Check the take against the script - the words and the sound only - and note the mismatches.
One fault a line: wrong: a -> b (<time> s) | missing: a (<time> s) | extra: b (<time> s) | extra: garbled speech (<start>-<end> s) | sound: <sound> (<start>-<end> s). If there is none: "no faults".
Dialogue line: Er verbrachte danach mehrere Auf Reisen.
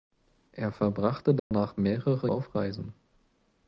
sound: dropout (1.4-1.5 s)